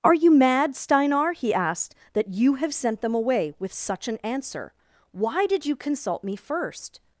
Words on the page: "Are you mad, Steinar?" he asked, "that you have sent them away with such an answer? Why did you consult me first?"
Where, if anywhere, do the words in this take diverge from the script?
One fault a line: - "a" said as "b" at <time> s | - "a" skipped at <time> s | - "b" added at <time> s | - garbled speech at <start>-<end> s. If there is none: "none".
none